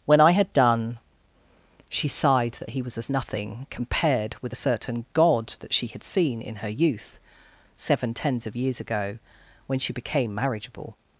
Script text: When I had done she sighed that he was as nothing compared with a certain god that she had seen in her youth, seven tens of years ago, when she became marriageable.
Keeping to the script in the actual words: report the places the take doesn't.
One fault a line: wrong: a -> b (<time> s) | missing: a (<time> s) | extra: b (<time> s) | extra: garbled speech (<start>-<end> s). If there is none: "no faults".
no faults